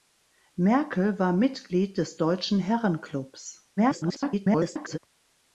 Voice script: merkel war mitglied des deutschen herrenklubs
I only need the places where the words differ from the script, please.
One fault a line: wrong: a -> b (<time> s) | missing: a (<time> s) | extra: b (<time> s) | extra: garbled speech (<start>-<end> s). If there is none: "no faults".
extra: garbled speech (3.8-5.0 s)